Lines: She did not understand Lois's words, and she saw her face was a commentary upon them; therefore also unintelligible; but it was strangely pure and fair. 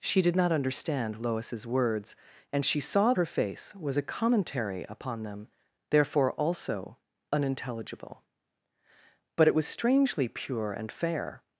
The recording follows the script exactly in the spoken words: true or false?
true